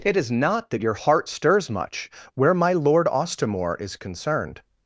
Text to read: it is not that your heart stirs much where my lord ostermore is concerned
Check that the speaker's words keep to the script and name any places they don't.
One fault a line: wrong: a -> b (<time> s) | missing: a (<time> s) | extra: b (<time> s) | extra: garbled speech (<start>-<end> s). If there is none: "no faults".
no faults